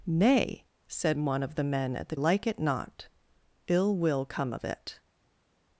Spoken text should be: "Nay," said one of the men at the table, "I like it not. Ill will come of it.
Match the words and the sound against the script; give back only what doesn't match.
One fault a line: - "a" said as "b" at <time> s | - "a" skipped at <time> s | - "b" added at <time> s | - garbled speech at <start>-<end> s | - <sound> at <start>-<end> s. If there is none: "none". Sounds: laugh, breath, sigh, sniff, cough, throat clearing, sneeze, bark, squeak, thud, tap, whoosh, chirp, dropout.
- "table I" skipped at 2.1 s